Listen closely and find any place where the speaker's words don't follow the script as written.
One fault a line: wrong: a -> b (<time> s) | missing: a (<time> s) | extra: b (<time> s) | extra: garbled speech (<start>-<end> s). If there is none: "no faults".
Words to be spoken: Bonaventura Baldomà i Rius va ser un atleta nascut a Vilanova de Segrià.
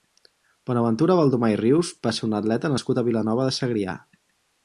no faults